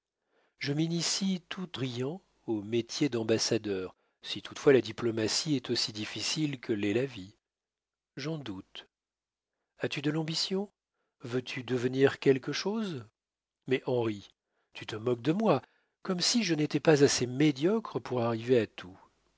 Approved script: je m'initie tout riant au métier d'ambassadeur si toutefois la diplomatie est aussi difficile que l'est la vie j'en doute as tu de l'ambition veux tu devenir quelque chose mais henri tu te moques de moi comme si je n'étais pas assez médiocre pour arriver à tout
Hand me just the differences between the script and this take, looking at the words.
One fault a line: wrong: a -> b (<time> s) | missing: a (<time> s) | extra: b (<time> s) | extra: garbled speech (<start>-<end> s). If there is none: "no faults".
no faults